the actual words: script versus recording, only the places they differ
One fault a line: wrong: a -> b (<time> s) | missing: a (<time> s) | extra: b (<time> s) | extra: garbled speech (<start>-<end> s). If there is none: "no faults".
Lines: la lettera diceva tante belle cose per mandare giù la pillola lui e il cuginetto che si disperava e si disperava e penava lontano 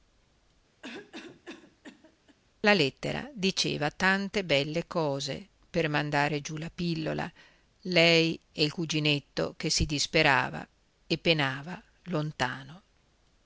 wrong: lui -> lei (7.8 s)
missing: si disperava e (11.2 s)